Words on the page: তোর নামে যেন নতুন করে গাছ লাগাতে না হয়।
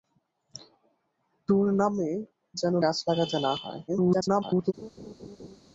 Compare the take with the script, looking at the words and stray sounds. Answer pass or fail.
fail